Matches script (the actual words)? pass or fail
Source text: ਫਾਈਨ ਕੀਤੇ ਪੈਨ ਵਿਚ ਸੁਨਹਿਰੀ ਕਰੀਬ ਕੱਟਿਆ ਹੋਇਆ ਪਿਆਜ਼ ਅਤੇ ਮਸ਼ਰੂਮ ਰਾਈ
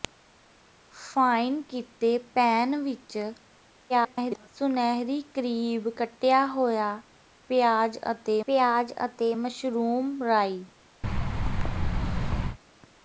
fail